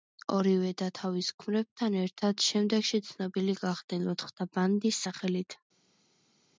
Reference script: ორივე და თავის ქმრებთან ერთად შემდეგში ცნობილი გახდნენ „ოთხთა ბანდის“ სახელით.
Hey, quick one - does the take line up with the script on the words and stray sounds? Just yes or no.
yes